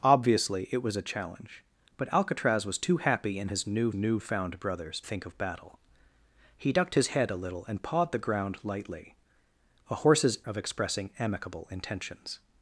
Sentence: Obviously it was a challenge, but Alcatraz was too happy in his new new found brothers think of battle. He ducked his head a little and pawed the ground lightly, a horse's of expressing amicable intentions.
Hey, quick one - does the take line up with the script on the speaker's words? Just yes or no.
yes